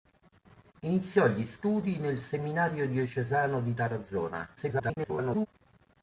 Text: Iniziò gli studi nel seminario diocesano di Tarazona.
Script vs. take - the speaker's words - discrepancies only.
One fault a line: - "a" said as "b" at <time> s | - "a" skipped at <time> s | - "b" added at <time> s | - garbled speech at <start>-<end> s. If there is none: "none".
- garbled speech at 4.6-5.5 s